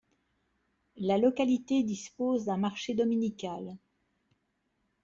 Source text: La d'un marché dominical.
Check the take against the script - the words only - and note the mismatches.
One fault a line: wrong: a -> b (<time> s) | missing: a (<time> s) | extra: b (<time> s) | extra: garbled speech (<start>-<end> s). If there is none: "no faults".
extra: localité dispose (1.2 s)